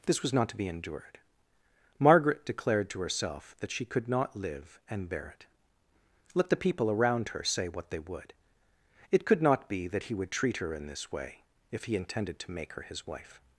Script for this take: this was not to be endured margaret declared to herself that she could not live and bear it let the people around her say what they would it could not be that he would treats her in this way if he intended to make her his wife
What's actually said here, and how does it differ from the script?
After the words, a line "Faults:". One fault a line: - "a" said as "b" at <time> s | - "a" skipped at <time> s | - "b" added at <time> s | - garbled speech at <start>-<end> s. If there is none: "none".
this was not to be endured margaret declared to herself that she could not live and bear it let the people around her say what they would it could not be that he would treat her in this way if he intended to make her his wife
Faults:
- "treats" said as "treat" at 10.3 s